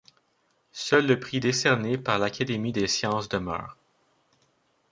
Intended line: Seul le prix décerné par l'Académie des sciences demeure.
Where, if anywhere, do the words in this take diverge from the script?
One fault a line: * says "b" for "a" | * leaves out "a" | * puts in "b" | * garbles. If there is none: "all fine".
all fine